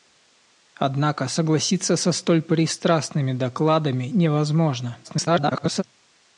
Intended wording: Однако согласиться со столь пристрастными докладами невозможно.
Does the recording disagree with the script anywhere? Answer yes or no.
yes